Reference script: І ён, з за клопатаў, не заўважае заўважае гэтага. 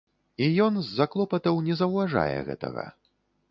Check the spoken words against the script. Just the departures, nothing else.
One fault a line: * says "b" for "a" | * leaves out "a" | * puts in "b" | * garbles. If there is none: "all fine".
* leaves out "заўважае"